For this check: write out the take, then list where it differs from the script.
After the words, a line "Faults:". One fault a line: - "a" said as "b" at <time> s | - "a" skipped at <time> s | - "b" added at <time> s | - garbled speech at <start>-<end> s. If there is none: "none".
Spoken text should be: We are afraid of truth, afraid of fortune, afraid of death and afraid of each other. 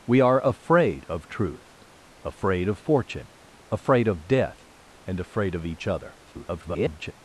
We are afraid of truth, afraid of fortune, afraid of death and afraid of each other. [garbled]
Faults:
- garbled speech at 6.2-7.1 s